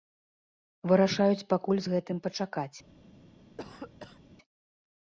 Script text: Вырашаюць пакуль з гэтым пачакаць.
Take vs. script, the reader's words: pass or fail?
pass